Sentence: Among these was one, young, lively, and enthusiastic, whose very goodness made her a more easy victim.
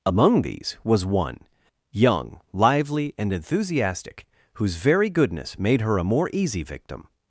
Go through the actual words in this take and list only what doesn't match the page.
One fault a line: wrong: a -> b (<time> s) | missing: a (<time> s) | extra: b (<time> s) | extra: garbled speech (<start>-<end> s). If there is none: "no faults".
no faults